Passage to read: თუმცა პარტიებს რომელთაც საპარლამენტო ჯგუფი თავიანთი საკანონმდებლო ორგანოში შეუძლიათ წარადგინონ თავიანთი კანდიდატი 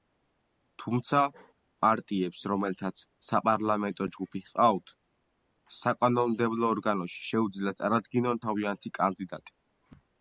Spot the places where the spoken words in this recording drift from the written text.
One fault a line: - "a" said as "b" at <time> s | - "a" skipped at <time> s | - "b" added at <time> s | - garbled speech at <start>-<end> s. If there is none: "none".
- "თავიანთი" said as "ჰყავთ" at 4.5 s